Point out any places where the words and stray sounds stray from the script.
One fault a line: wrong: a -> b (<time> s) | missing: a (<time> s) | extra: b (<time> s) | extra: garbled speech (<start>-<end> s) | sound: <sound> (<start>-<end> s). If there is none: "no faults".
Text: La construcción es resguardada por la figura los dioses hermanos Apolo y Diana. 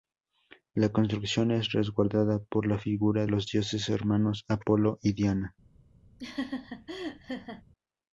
sound: laugh (6.2-7.6 s)